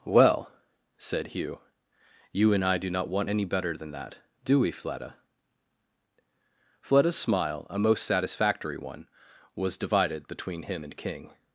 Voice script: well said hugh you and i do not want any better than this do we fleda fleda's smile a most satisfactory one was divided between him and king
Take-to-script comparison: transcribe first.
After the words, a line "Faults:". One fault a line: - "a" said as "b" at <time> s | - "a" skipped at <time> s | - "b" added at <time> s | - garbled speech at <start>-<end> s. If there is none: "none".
well said hugh you and i do not want any better than that do we fleda fleda's smile a most satisfactory one was divided between him and king
Faults:
- "this" said as "that" at 3.9 s